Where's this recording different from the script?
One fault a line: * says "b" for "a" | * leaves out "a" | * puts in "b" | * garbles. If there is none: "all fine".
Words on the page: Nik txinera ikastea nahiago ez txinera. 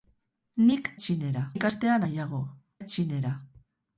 all fine